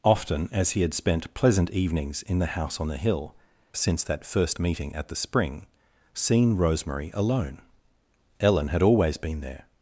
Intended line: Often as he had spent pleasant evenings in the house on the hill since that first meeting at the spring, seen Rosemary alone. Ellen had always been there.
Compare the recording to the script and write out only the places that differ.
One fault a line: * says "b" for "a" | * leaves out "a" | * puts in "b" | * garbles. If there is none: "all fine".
all fine